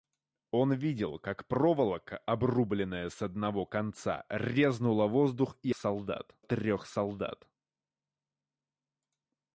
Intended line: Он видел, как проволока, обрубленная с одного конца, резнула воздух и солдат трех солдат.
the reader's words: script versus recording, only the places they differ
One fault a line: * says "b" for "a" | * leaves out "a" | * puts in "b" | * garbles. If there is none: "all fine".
all fine